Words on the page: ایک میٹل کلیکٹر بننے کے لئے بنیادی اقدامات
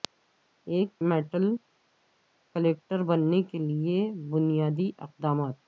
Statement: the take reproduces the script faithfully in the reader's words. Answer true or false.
true